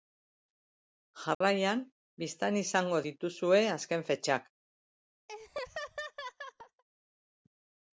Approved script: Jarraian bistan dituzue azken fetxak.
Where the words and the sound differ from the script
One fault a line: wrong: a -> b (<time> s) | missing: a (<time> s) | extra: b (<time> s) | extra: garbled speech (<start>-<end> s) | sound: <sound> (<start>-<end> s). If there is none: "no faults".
sound: dropout (1.3-1.4 s)
extra: izango (2.6 s)
sound: laugh (5.3-6.8 s)